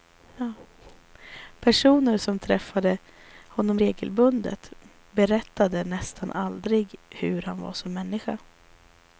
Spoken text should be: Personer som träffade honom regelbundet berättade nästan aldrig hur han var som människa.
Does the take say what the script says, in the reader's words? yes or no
yes